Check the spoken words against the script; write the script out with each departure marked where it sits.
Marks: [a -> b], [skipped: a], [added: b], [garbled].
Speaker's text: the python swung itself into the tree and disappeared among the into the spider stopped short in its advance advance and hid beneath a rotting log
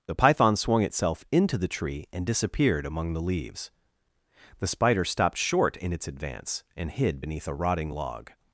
the python swung itself into the tree and disappeared among the [into -> leaves] the spider stopped short in its advance [skipped: advance] and hid beneath a rotting log